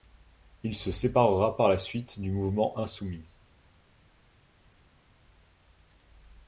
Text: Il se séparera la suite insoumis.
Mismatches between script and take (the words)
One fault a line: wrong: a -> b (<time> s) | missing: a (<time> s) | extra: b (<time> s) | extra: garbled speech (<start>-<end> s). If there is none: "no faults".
extra: par (1.6 s)
extra: du mouvement (2.2 s)